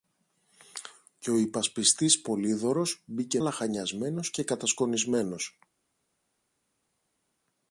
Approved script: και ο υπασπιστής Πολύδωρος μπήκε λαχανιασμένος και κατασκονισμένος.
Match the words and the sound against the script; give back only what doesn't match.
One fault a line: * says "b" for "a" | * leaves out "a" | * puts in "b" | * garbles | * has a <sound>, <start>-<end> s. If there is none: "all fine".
all fine